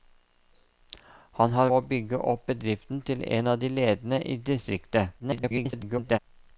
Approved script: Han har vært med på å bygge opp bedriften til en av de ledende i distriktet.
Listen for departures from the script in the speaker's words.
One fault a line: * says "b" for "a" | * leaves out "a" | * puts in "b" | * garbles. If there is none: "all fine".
* leaves out "vært med på"
* garbles